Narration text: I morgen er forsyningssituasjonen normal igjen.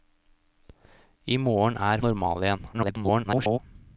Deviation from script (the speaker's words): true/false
true